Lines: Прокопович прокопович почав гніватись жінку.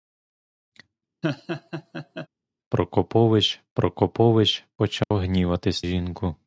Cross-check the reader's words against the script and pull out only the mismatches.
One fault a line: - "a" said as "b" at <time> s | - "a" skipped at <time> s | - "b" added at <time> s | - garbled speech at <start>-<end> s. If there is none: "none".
none